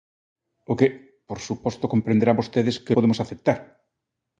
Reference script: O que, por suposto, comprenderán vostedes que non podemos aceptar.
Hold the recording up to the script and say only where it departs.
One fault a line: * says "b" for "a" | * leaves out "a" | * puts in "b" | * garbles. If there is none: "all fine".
* leaves out "non"